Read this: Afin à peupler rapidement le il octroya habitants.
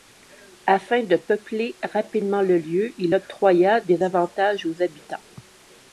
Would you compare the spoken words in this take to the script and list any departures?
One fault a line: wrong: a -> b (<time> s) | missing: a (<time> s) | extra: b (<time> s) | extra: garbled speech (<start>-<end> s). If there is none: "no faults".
wrong: à -> de (1.0 s)
extra: lieu (2.6 s)
extra: des avantages aux (3.8 s)